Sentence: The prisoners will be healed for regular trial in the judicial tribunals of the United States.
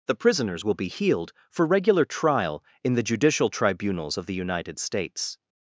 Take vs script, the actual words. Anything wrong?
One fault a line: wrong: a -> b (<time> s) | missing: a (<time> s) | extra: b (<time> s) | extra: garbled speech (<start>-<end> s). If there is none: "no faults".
no faults